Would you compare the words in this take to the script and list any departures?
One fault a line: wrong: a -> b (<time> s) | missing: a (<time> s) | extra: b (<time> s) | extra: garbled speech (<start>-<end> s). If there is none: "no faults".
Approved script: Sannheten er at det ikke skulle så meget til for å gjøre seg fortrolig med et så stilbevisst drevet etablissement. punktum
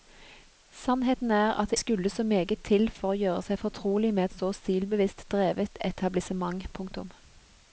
missing: ikke (1.8 s)